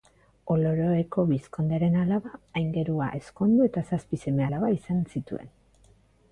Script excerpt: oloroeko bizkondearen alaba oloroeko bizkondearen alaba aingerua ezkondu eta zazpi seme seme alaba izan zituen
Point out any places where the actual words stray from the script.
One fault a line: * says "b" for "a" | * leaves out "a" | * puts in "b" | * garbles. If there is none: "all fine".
* leaves out "oloroeko bizkondearen alaba"
* leaves out "seme"